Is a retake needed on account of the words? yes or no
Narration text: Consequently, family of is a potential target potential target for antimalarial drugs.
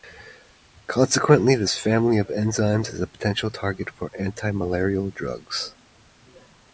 yes